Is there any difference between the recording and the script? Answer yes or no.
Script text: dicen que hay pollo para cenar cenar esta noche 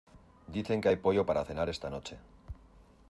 yes